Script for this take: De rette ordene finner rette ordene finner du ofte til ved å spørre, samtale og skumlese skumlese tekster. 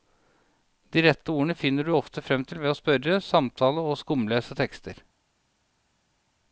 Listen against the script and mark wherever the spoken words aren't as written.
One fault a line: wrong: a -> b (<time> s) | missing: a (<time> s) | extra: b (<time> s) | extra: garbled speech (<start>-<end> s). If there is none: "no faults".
missing: rette ordene finner (1.9 s)
extra: frem (2.3 s)
missing: skumlese (4.6 s)